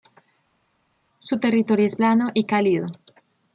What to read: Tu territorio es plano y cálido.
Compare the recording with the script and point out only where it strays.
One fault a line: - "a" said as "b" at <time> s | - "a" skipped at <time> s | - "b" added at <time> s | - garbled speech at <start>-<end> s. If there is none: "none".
- "Tu" said as "Su" at 1.2 s